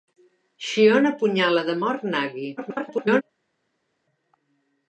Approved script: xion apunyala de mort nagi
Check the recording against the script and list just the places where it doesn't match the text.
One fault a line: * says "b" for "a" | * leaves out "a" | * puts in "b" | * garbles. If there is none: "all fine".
* garbles